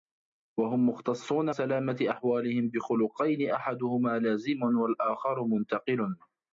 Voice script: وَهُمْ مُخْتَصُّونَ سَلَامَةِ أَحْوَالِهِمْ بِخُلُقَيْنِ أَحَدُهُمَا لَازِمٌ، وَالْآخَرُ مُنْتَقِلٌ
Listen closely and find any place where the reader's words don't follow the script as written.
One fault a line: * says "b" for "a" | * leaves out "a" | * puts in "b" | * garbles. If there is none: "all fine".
all fine